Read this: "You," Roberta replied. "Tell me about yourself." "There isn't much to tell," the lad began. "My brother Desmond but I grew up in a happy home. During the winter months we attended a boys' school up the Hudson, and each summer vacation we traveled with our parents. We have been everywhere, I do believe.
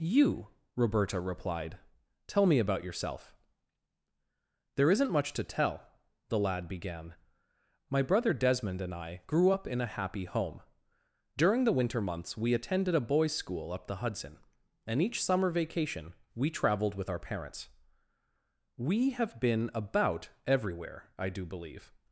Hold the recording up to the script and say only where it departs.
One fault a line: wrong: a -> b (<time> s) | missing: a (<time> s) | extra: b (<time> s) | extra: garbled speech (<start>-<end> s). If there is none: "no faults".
wrong: but -> and (8.8 s)
extra: about (19.7 s)